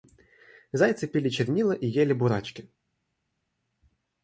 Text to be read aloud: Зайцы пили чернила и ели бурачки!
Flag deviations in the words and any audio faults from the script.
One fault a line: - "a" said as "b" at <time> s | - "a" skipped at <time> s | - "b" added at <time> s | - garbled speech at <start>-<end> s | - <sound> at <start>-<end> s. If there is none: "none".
none